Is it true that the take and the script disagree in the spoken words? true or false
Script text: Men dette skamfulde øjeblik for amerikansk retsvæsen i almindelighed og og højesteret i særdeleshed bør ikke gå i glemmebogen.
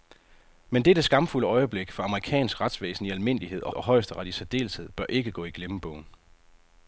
false